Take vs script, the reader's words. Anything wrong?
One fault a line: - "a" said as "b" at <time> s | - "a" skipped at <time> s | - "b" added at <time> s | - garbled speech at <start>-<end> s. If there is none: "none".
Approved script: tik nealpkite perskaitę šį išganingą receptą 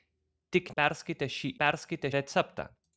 - "nealpkite" skipped at 0.7 s
- "išganingą" said as "perskaitę" at 1.6 s